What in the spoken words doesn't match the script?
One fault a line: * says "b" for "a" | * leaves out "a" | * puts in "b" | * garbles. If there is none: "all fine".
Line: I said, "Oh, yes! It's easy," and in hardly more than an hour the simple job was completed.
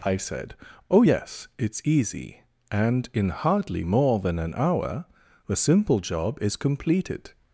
* says "is" for "was"